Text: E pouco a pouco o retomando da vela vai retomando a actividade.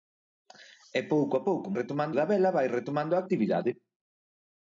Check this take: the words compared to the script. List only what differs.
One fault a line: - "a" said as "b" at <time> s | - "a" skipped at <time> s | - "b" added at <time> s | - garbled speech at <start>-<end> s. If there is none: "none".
none